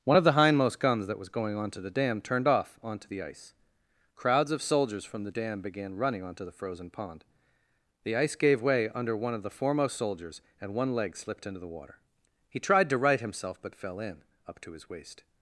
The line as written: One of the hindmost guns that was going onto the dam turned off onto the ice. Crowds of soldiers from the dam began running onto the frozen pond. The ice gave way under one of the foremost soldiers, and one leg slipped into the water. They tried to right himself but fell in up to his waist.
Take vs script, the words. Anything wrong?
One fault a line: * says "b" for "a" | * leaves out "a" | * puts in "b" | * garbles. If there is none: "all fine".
* says "He" for "They"